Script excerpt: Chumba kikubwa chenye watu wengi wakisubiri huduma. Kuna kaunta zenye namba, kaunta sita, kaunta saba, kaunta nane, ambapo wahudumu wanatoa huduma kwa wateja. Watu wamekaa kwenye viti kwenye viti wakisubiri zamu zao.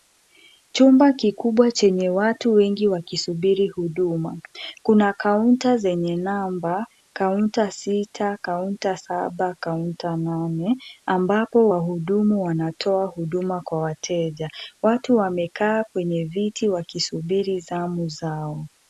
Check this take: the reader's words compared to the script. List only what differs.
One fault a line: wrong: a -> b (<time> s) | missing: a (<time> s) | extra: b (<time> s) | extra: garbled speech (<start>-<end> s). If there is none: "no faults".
missing: kwenye viti (16.7 s)